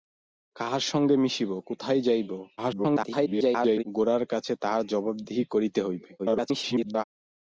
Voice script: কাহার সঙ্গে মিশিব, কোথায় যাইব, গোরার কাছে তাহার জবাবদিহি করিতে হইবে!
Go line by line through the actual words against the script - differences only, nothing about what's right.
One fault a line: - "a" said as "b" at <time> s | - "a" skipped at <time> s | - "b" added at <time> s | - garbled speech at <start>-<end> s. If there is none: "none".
- garbled speech at 2.6-3.8 s
- garbled speech at 6.2-7.0 s